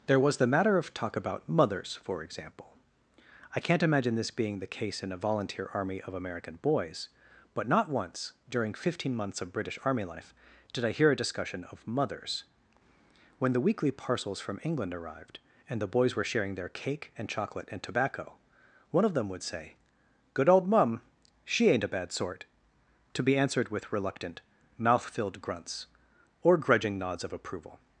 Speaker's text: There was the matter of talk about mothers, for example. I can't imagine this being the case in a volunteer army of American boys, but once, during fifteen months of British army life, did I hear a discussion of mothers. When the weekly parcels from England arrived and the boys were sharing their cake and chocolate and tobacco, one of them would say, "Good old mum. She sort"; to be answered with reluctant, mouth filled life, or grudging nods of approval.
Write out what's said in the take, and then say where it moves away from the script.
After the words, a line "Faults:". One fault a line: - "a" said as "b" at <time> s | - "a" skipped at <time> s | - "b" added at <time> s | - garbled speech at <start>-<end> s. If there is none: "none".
There was the matter of talk about mothers, for example. I can't imagine this being the case in a volunteer army of American boys, but not once, during fifteen months of British army life, did I hear a discussion of mothers. When the weekly parcels from England arrived and the boys were sharing their cake and chocolate and tobacco, one of them would say, "Good old mum. She ain't a bad sort"; to be answered with reluctant, mouth filled grunts, or grudging nods of approval.
Faults:
- "not" added at 7.7 s
- "ain't a bad" added at 21.7 s
- "life" said as "grunts" at 25.4 s